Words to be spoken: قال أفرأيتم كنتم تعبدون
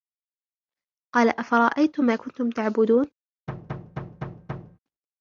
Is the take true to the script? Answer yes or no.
no